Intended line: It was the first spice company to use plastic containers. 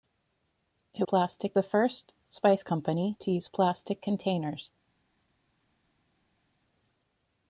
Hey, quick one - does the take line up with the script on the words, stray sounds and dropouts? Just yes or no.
no